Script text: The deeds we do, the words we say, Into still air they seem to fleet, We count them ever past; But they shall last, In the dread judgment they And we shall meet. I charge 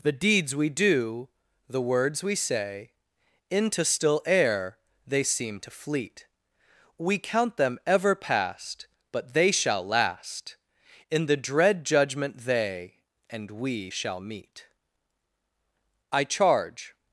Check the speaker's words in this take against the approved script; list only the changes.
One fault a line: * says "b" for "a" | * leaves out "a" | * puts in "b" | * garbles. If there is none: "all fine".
all fine